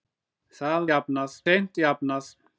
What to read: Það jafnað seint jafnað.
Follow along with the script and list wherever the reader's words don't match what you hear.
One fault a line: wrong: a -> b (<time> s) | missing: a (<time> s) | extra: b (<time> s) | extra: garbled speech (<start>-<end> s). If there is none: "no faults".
no faults